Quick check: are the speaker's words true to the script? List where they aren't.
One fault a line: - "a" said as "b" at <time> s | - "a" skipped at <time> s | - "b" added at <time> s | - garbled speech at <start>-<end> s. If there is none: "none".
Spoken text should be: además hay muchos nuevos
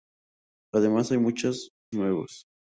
none